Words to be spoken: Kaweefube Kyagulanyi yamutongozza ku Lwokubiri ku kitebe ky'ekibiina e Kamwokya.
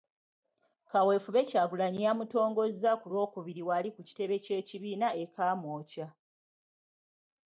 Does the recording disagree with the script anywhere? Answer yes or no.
yes